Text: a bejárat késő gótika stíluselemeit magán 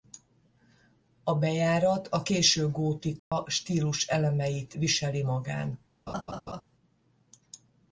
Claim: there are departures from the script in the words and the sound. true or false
true